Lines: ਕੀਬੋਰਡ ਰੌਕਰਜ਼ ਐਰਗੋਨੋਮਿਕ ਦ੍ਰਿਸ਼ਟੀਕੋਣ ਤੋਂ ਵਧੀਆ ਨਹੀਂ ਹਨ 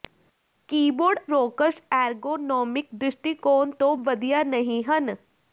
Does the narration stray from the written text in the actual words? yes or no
no